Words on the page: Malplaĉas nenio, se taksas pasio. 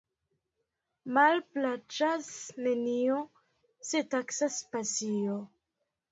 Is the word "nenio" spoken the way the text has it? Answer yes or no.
yes